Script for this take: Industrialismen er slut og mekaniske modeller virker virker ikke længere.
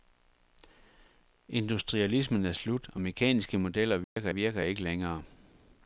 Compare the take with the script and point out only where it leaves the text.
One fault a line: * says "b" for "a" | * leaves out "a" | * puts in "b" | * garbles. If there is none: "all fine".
all fine